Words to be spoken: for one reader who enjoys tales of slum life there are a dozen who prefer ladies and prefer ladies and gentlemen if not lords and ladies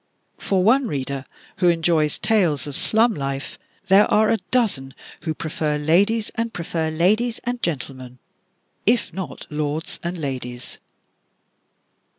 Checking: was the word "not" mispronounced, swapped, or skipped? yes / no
no